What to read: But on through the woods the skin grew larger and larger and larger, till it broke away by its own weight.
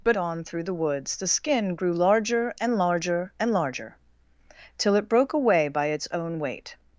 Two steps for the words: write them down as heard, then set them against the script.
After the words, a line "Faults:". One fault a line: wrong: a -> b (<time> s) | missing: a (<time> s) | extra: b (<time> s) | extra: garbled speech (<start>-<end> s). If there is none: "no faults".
But on through the woods the skin grew larger and larger and larger, till it broke away by its own weight.
Faults:
no faults